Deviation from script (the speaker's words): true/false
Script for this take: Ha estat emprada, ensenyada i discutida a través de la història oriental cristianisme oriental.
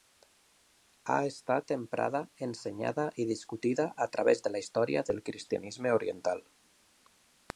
true